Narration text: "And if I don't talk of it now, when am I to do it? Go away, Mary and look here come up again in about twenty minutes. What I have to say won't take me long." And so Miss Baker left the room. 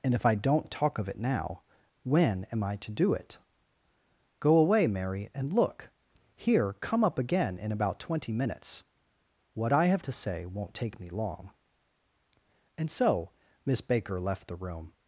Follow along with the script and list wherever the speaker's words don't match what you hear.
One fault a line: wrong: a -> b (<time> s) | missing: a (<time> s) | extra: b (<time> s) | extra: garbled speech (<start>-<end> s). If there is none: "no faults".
no faults